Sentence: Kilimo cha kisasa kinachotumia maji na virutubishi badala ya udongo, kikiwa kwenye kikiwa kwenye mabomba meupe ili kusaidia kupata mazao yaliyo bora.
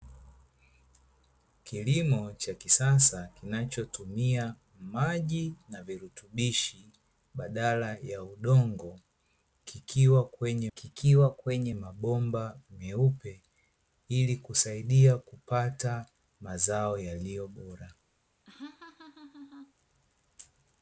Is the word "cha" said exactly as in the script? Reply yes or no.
yes